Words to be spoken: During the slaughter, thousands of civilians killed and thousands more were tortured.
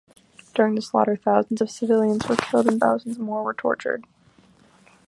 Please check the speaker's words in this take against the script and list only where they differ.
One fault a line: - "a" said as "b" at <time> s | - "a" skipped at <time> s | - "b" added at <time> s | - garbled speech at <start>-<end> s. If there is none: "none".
- "were" added at 2.3 s